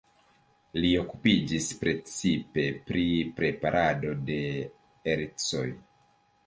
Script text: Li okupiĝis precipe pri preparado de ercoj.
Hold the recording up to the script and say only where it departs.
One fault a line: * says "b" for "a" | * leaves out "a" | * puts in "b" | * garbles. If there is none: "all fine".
all fine